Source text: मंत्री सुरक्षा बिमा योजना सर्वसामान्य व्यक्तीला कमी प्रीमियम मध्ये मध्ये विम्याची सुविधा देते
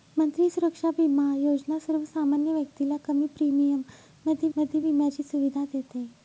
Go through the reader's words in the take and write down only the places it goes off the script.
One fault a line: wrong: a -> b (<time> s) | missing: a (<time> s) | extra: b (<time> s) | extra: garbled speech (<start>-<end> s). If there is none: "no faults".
no faults